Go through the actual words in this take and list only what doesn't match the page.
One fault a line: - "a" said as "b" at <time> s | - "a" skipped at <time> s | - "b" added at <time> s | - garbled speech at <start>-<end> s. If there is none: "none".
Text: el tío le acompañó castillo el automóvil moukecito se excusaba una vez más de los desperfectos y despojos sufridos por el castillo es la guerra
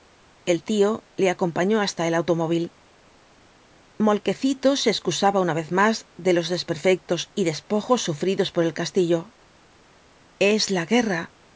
- "castillo" said as "hasta" at 1.8 s